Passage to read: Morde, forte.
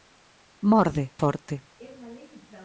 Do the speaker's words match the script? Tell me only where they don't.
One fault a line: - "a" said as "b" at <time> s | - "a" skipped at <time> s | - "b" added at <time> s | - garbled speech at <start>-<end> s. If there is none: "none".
none